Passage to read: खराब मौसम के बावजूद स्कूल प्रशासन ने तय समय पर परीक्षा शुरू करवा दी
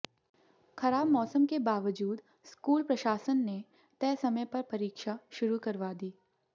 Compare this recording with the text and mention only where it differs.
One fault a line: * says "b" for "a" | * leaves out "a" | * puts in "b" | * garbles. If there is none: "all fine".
all fine